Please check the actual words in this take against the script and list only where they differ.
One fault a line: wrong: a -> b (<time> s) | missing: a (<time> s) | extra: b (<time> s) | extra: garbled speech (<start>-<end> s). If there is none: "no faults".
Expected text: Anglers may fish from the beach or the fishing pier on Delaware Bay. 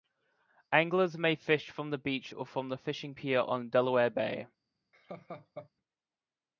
extra: from (2.5 s)